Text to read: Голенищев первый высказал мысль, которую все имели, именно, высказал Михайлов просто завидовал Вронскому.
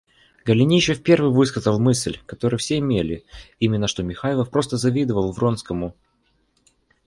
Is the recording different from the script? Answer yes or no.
yes